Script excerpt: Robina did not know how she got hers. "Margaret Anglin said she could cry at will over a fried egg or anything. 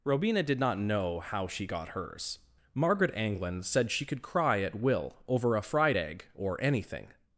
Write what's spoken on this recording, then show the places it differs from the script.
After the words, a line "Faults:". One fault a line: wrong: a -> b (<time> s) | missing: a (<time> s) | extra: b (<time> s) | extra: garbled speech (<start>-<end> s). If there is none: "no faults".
Robina did not know how she got hers. "Margaret Anglin said she could cry at will over a fried egg or anything.
Faults:
no faults